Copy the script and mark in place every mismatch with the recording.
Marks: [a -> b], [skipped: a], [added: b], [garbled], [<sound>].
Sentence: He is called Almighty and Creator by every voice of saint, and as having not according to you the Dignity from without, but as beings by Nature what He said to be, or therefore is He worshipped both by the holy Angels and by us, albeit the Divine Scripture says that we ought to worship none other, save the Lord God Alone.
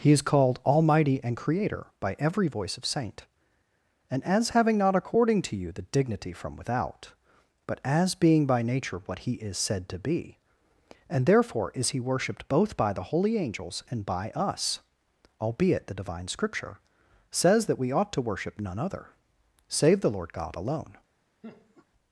He is called Almighty and Creator by every voice of saint, and as having not according to you the Dignity from without, but as [beings -> being] by Nature what He [added: is] said to be, [or -> and] therefore is He worshipped both by the holy Angels and by us, albeit the Divine Scripture says that we ought to worship none other, save the Lord God Alone. [laugh]